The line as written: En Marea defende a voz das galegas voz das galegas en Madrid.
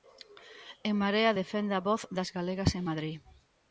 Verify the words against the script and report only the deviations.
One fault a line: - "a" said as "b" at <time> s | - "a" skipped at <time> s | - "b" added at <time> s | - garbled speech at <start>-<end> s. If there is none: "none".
- "voz das galegas" skipped at 2.7 s